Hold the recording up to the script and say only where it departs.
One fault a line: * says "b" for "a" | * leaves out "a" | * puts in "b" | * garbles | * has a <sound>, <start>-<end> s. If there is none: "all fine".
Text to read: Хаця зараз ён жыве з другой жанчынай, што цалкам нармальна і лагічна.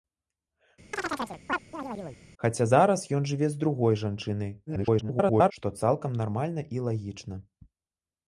* has a chirp, 0.9-2.2 s
* garbles